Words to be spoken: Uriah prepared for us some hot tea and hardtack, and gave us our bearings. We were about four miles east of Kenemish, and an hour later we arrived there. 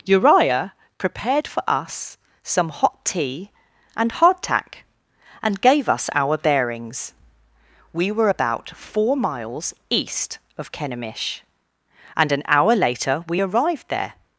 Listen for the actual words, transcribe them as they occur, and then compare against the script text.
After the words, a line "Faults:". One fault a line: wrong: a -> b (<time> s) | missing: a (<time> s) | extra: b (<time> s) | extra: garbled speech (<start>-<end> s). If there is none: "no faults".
Uriah prepared for us some hot tea and hardtack, and gave us our bearings. We were about four miles east of Kenemish, and an hour later we arrived there.
Faults:
no faults